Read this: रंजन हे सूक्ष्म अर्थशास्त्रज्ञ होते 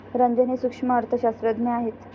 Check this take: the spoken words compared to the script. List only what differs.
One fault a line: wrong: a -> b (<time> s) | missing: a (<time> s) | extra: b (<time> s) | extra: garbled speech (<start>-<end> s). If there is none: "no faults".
wrong: होते -> आहेत (1.7 s)